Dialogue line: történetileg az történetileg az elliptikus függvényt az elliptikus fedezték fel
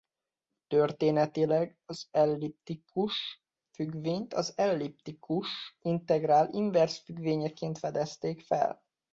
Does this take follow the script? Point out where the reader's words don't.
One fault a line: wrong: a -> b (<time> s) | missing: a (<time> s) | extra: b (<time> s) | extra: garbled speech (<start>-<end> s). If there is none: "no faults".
wrong: történetileg -> elliptikus függvényt (2.1 s)
wrong: függvényt az elliptikus -> integrál inverz függvényeként (5.8 s)